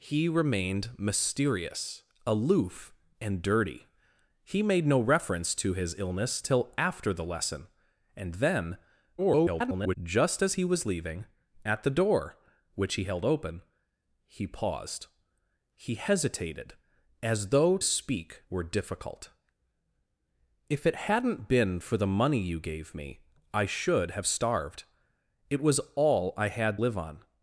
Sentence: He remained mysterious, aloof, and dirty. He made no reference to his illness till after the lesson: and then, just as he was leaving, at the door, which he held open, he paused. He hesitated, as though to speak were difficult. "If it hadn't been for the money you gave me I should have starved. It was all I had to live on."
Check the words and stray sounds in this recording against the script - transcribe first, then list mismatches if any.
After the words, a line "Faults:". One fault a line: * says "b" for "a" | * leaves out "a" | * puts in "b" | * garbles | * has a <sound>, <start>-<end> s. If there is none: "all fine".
He remained mysterious, aloof, and dirty. He made no reference to his illness till after the lesson: and then, [garbled] just as he was leaving, at the door, which he held open, he paused. He hesitated, as though speak were difficult. "If it hadn't been for the money you gave me I should have starved. It was all I had live on."
Faults:
* garbles
* leaves out "to"
* leaves out "to"